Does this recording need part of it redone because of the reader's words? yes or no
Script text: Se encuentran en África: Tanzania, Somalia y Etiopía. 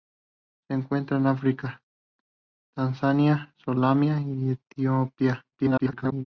yes